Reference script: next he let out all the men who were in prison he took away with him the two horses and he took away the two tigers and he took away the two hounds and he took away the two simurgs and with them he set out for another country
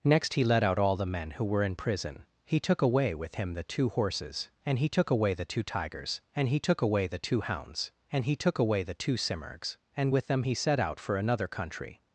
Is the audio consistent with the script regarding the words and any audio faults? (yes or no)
yes